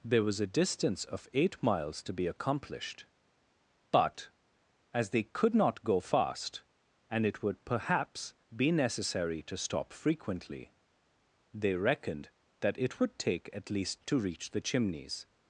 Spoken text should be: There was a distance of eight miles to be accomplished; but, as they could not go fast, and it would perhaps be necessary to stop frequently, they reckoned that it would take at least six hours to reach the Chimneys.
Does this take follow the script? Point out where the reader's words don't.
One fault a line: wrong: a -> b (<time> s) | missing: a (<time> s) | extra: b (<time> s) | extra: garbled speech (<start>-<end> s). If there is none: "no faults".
missing: six hours (14.0 s)